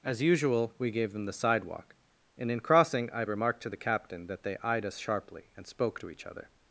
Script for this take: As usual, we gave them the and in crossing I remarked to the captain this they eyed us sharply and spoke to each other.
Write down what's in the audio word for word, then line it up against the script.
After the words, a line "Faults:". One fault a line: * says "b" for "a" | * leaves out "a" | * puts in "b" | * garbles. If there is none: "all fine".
As usual, we gave them the sidewalk, and in crossing I remarked to the captain that they eyed us sharply and spoke to each other.
Faults:
* puts in "sidewalk"
* says "that" for "this"